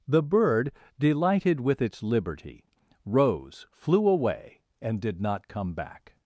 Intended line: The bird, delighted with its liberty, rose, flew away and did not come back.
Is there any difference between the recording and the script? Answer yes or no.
no